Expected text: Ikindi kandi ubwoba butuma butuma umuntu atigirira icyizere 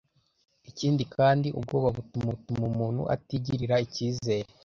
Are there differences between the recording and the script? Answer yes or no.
no